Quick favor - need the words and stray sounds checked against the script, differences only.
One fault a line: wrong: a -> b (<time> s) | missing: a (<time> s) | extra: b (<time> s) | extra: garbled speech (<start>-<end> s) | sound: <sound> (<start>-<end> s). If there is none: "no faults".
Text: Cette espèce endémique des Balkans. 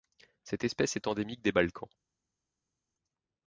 extra: est (0.9 s)